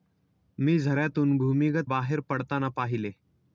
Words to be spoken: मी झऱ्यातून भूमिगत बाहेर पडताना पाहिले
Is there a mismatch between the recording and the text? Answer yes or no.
no